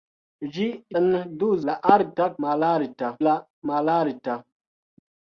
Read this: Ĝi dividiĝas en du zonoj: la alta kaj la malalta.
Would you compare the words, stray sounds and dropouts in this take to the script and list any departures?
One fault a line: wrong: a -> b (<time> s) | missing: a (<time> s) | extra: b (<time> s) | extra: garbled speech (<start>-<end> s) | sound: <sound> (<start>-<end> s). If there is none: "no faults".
missing: dividiĝas (0.6 s)
missing: zonoj (1.5 s)
wrong: kaj -> malalta (2.5 s)